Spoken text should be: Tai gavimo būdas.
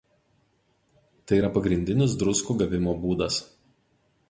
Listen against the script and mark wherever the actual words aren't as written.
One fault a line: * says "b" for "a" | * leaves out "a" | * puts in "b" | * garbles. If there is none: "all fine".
* puts in "yra pagrindinis druskų"